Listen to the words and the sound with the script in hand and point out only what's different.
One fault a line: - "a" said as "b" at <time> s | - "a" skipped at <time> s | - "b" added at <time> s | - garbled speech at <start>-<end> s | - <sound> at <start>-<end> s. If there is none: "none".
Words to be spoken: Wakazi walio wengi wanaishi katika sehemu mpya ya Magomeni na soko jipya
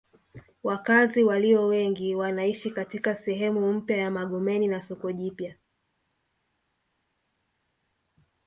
none